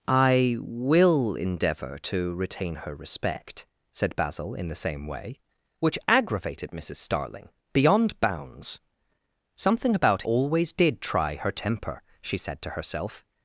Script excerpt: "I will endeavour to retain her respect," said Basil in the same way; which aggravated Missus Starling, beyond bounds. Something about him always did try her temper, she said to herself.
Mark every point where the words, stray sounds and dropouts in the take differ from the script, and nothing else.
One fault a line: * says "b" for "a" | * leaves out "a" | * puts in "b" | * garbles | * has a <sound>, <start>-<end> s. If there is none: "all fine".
* leaves out "him"